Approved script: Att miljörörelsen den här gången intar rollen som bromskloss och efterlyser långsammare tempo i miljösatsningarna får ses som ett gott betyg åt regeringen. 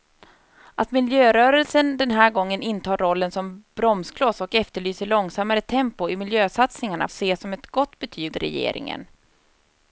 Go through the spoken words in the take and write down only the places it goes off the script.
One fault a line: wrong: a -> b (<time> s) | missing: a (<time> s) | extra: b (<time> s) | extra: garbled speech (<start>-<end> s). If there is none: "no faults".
missing: får (7.1 s)
missing: åt (8.4 s)